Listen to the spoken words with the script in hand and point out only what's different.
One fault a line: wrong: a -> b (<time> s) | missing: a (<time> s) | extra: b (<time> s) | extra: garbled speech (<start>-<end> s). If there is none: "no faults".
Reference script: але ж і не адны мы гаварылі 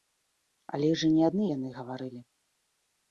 wrong: мы -> яны (1.5 s)